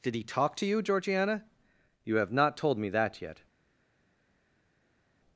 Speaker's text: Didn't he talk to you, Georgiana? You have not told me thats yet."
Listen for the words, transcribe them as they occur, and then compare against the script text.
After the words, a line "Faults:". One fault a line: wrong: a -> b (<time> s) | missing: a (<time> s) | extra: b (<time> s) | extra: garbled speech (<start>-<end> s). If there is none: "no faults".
Did he talk to you, Georgiana? You have not told me that yet."
Faults:
wrong: Didn't -> Did (0.0 s)
wrong: thats -> that (2.9 s)